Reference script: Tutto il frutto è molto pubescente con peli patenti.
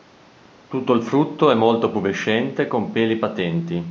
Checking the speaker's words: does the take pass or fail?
pass